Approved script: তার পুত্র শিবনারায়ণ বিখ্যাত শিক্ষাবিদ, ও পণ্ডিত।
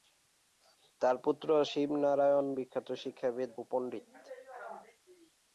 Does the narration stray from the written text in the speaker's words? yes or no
no